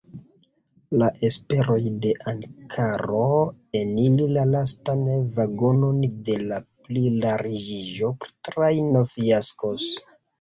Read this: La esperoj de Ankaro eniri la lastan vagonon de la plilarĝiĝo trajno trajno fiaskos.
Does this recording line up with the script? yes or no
no